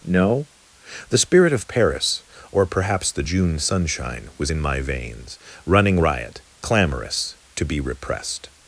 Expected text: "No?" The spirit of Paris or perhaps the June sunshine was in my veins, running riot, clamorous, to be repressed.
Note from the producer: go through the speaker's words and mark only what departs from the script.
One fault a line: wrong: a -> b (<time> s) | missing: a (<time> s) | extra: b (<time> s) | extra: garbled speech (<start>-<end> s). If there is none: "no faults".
no faults